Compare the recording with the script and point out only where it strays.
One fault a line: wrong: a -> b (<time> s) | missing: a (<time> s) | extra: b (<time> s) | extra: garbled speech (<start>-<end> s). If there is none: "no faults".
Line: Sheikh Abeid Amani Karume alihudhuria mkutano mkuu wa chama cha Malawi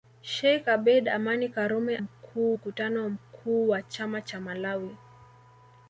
wrong: alihudhuria -> mkuu (2.0 s)